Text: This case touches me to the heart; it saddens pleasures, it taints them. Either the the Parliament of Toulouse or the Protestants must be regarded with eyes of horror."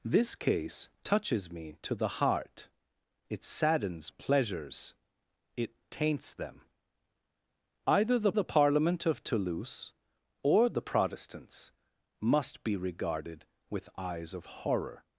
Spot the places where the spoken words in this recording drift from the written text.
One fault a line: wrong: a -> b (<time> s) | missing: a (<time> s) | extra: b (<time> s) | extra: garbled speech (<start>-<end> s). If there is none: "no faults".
no faults